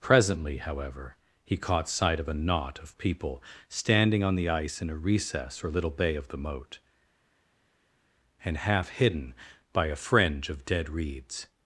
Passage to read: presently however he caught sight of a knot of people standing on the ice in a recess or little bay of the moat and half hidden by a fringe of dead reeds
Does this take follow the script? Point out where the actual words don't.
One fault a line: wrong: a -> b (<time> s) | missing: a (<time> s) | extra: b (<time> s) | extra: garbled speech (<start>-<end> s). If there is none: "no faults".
no faults